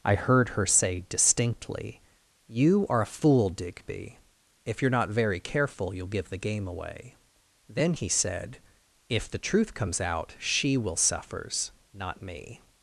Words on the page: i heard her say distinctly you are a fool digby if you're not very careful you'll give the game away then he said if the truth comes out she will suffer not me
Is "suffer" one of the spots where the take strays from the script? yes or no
yes